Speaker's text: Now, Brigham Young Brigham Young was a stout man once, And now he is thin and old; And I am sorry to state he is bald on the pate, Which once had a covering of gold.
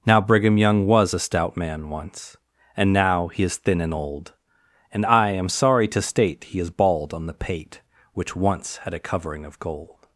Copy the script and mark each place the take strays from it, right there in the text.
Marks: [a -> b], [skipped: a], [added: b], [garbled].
Now, Brigham Young [skipped: Brigham Young] was a stout man once, And now he is thin and old; And I am sorry to state he is bald on the pate, Which once had a covering of gold.